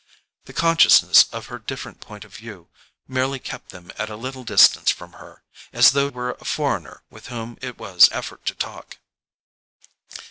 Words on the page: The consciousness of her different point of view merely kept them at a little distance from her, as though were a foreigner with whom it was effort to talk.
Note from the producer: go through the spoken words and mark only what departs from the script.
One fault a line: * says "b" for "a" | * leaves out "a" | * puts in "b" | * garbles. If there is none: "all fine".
all fine